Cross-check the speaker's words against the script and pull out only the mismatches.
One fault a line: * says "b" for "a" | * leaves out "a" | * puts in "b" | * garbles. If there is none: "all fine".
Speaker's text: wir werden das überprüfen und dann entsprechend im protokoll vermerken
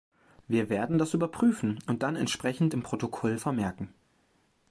all fine